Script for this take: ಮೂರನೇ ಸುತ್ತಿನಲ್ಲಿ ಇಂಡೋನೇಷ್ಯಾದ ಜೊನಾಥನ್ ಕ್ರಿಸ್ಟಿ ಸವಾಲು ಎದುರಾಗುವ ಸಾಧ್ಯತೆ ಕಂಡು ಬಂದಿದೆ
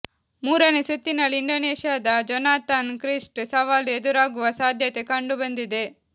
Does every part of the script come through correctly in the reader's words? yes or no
yes